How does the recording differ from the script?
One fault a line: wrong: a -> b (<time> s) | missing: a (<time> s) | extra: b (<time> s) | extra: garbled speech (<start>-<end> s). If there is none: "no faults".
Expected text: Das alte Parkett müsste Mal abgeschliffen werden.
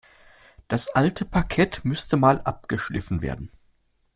no faults